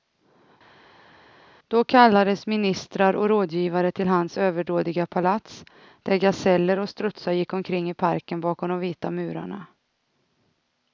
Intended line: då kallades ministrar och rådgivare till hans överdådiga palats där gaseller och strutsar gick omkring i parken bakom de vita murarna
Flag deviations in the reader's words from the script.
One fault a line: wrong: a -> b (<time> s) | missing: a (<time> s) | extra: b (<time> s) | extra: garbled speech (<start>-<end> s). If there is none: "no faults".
no faults